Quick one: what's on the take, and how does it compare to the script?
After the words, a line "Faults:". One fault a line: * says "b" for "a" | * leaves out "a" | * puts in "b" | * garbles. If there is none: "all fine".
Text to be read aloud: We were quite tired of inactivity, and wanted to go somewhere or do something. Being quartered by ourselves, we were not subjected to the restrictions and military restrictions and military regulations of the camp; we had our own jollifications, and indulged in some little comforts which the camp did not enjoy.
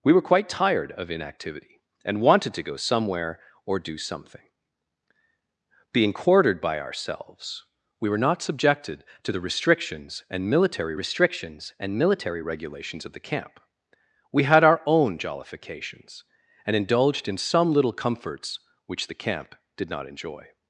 We were quite tired of inactivity, and wanted to go somewhere or do something. Being quartered by ourselves, we were not subjected to the restrictions and military restrictions and military regulations of the camp; we had our own jollifications, and indulged in some little comforts which the camp did not enjoy.
Faults:
all fine